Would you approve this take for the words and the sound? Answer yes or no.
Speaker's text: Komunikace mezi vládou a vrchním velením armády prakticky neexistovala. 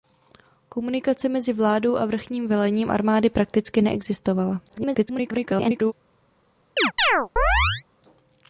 no